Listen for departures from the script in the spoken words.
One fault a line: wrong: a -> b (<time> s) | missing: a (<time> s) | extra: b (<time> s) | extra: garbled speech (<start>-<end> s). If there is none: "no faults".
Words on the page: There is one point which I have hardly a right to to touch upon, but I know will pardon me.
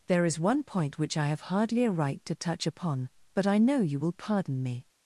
missing: to (2.4 s)
extra: you (3.8 s)